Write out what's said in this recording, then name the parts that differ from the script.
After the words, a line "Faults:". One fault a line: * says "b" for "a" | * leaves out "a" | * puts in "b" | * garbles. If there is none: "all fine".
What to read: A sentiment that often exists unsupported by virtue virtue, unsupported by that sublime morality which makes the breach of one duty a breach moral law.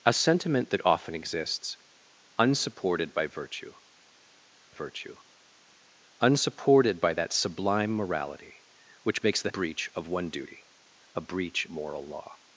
A sentiment that often exists unsupported by virtue virtue, unsupported by that sublime morality which makes the breach of one duty a breach moral law.
Faults:
all fine